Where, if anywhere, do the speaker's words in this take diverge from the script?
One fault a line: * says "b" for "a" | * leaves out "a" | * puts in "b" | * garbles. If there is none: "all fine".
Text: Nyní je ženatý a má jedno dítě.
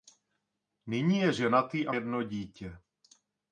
* leaves out "má"